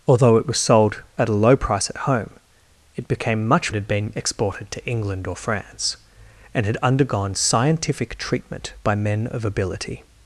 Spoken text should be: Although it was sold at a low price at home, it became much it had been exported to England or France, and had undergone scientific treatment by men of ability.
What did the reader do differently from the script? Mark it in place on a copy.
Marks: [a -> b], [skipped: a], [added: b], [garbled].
Although it was sold at a low price at home, it became much it had been exported to England or France, and had undergone scientific treatment by men of ability.